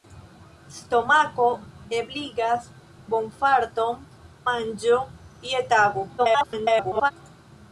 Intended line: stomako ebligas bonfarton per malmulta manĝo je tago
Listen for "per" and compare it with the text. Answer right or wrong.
wrong